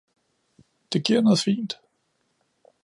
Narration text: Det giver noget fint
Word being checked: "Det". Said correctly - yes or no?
yes